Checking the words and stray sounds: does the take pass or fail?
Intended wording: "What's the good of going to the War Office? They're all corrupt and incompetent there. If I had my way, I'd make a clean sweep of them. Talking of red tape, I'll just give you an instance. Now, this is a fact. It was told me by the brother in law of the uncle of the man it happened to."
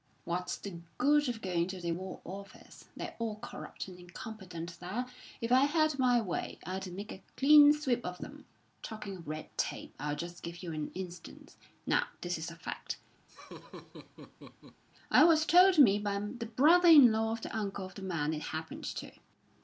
fail